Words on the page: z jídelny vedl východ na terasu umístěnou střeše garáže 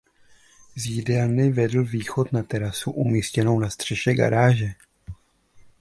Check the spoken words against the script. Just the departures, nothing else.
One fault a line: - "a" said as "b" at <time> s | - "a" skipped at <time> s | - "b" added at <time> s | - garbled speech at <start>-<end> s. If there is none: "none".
- "na" added at 3.6 s